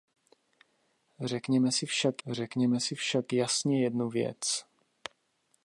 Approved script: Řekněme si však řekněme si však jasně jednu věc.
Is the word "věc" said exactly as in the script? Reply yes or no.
yes